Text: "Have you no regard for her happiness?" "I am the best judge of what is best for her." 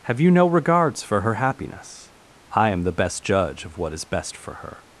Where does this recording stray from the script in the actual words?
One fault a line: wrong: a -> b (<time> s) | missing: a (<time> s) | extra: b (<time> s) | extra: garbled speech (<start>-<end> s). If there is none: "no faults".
wrong: regard -> regards (0.5 s)